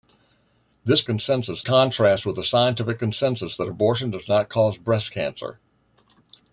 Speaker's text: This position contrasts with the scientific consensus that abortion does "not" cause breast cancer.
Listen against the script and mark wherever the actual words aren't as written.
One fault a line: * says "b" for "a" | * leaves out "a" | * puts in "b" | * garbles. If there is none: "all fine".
* says "consensus" for "position"